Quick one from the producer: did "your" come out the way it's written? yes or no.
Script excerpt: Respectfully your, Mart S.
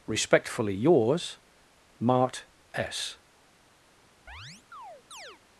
no